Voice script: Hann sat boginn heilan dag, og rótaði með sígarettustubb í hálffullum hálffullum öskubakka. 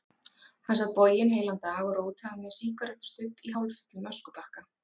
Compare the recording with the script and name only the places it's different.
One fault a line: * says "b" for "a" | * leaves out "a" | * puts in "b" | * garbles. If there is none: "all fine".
* leaves out "hálffullum"